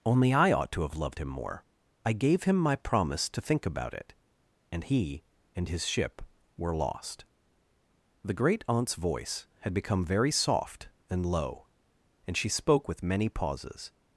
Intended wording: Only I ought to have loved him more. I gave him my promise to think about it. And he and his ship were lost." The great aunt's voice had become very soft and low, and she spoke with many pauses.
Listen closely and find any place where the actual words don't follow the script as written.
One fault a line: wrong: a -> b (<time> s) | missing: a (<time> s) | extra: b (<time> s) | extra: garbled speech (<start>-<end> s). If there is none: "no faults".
no faults